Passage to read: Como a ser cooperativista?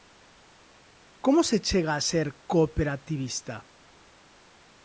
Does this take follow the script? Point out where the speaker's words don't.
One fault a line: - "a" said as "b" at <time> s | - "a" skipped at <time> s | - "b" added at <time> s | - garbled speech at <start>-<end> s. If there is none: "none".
- "se chega" added at 1.4 s